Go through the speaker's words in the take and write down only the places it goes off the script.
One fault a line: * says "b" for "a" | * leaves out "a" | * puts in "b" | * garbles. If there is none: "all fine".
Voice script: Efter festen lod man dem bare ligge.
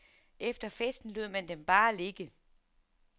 all fine